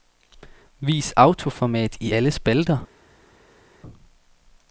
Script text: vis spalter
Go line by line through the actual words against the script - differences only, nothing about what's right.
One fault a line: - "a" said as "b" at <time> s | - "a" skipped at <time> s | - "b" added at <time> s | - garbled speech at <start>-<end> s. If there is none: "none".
- "autoformat i alle" added at 1.2 s